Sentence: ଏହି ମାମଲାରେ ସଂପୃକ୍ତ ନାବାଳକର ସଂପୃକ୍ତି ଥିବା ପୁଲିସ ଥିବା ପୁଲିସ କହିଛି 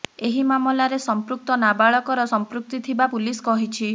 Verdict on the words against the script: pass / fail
fail